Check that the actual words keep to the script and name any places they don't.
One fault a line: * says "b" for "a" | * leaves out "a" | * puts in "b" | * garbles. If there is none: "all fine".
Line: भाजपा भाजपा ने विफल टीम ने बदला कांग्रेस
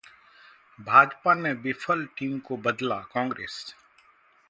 * leaves out "भाजपा"
* says "को" for "ने"